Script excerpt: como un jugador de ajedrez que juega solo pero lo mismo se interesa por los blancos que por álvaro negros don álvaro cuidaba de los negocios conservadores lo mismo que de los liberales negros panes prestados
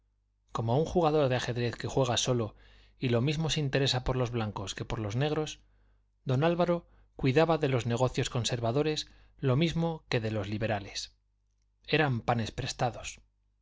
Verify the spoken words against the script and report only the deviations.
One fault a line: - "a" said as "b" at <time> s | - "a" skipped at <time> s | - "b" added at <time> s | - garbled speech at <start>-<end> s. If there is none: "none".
- "pero" said as "y" at 3.0 s
- "álvaro" said as "los" at 5.0 s
- "negros" said as "eran" at 11.8 s